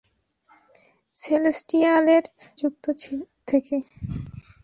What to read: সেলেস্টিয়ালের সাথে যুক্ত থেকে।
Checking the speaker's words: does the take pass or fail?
fail